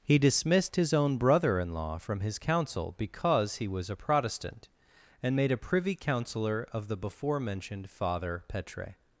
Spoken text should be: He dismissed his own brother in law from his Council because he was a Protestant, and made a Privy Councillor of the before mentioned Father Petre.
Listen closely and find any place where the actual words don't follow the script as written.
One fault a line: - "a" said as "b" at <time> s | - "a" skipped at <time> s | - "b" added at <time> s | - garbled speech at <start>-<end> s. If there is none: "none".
none